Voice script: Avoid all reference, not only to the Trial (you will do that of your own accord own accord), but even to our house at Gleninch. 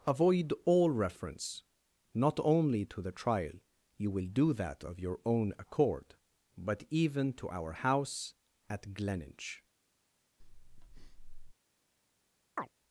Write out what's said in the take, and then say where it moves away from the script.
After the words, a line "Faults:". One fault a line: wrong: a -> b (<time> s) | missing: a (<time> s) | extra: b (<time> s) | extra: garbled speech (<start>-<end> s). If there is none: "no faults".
Avoid all reference, not only to the Trial (you will do that of your own accord), but even to our house at Gleninch.
Faults:
missing: own accord (6.2 s)